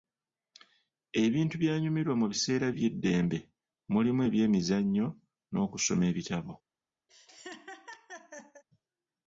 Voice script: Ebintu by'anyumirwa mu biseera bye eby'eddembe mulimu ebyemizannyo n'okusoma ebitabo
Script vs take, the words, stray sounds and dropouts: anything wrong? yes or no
yes